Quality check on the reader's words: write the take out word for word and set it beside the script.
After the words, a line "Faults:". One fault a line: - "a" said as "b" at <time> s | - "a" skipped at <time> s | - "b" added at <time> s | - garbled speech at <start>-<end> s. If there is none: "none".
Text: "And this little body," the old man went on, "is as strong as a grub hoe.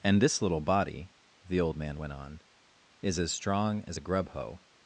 "And this little body," the old man went on, "is as strong as a grub hoe.
Faults:
none